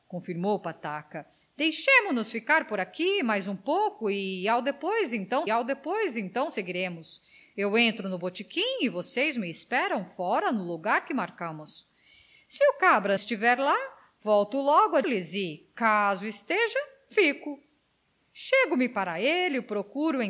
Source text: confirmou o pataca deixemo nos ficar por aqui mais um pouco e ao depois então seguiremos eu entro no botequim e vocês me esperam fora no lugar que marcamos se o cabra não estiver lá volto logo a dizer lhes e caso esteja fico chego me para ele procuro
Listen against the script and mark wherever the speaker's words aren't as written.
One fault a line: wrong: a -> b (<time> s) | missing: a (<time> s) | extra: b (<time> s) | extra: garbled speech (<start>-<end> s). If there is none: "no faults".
extra: ao depois então (5.5 s)
missing: não (13.2 s)
missing: dizer (15.0 s)